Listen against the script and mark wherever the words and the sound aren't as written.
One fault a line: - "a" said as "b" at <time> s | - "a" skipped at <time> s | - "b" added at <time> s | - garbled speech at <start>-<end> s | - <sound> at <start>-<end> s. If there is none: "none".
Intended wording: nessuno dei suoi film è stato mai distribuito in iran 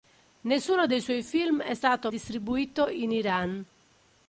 - "mai" skipped at 2.1 s